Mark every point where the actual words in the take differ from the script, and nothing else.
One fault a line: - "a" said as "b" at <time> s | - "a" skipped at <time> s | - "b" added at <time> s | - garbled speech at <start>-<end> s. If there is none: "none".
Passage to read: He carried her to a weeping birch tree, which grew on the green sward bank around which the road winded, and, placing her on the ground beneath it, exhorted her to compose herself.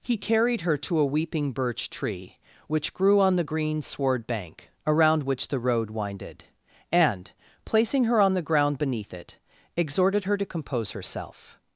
none